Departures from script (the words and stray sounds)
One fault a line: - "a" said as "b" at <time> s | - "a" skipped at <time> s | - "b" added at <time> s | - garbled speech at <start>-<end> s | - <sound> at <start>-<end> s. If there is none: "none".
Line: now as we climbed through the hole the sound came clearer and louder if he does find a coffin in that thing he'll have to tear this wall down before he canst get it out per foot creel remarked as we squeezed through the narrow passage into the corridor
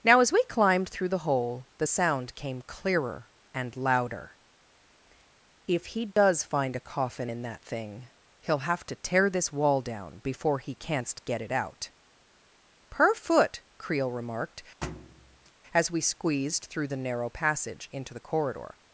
- dropout at 6.1-6.2 s
- thud at 14.8-15.5 s